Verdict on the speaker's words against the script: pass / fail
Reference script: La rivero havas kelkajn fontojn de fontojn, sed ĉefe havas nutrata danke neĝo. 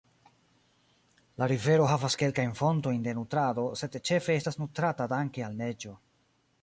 fail